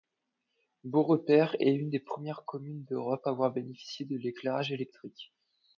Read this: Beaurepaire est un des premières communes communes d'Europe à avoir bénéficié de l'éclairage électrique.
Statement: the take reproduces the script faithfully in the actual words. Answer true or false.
false